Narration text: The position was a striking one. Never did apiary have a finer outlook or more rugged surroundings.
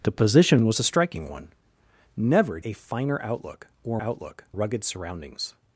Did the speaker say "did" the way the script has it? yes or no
no